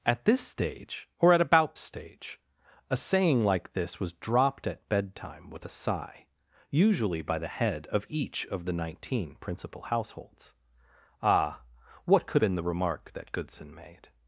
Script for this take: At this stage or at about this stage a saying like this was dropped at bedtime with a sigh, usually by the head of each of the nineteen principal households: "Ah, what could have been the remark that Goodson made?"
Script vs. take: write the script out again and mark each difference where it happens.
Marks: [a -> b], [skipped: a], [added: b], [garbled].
At this stage or at about [skipped: this] stage a saying like this was dropped at bedtime with a sigh, usually by the head of each of the nineteen principal households: "Ah, what could [skipped: have] been the remark that Goodson made?"